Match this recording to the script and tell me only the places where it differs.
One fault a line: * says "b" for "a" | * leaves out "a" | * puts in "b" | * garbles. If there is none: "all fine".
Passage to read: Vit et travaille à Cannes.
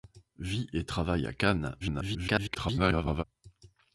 * garbles